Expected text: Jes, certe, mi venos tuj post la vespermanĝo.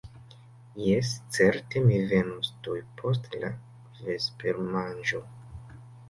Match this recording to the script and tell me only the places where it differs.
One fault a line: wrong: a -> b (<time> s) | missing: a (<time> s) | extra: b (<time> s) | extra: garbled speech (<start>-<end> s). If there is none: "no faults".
no faults